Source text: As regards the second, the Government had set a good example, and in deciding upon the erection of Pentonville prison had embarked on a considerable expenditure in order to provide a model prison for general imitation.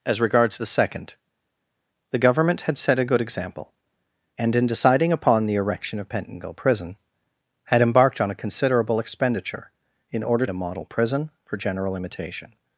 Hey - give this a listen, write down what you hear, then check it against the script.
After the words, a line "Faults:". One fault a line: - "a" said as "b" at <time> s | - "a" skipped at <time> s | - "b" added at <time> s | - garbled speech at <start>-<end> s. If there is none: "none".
As regards the second, the Government had set a good example, and in deciding upon the erection of Pentonville prison had embarked on a considerable expenditure in order a model prison for general imitation.
Faults:
- "to provide" skipped at 10.4 s